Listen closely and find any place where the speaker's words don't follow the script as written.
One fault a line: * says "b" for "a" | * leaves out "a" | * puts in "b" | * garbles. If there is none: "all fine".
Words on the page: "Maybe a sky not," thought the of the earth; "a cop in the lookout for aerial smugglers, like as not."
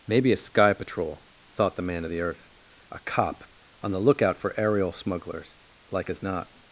* says "patrol" for "not"
* puts in "man"
* says "on" for "in"